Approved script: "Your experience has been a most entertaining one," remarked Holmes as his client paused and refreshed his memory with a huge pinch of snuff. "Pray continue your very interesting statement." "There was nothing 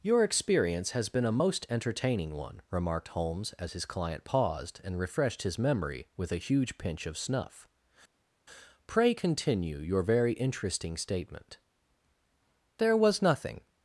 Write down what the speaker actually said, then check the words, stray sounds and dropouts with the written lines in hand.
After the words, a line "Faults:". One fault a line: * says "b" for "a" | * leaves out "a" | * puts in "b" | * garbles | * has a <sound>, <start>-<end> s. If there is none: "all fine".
"Your experience has been a most entertaining one," remarked Holmes as his client paused and refreshed his memory with a huge pinch of snuff. "Pray continue your very interesting statement." "There was nothing
Faults:
all fine